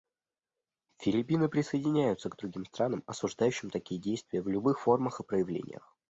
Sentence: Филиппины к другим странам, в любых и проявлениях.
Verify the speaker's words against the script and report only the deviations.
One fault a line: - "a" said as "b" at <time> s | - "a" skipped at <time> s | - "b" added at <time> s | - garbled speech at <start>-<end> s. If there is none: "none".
- "присоединяются" added at 1.5 s
- "осуждающим такие действия" added at 3.1 s
- "формах" added at 4.8 s